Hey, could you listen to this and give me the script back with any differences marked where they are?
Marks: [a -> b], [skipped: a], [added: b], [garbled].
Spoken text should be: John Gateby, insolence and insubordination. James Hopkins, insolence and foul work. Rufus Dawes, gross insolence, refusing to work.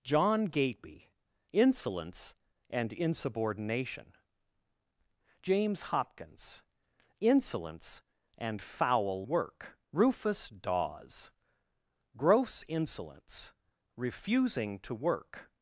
John Gateby, insolence and insubordination. James Hopkins, insolence and foul work. Rufus Dawes, gross insolence, refusing to work.